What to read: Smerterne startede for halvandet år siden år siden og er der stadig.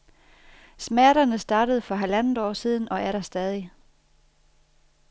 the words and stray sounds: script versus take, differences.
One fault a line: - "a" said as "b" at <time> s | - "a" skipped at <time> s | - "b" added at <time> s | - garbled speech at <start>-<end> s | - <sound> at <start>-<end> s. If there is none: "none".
- "år siden" skipped at 2.9 s